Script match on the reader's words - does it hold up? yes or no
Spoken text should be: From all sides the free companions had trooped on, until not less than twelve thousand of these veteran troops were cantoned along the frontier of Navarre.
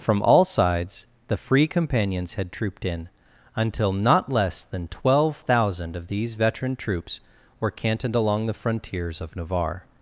no